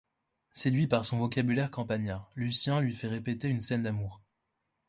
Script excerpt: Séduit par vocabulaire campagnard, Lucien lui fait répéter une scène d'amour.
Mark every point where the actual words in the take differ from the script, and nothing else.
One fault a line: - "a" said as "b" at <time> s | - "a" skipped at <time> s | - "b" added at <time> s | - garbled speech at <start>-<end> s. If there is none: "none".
- "son" added at 1.1 s